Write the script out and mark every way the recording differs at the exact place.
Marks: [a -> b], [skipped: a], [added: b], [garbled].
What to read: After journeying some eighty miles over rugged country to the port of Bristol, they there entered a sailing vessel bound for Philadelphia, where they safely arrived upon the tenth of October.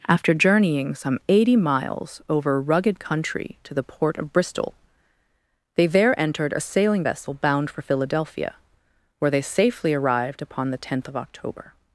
After journeying some eighty miles over rugged country to the port of Bristol, they there entered a sailing vessel bound for Philadelphia, where they safely arrived upon the tenth of October.